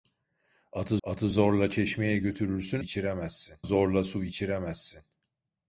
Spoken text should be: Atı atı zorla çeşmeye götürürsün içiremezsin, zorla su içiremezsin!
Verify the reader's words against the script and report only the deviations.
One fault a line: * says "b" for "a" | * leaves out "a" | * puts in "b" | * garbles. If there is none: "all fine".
all fine